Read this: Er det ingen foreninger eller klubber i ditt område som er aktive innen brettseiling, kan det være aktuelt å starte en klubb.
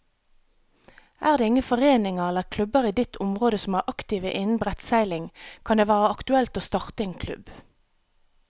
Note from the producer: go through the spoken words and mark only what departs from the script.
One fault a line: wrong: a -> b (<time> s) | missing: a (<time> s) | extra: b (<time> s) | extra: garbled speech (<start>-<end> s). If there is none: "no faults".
no faults